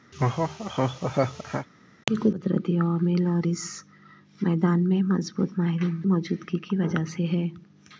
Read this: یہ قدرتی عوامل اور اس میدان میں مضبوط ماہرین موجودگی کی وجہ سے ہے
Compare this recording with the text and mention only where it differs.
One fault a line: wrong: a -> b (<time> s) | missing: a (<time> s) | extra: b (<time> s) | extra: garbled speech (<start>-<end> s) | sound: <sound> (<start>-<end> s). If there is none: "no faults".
sound: laugh (0.1-1.7 s)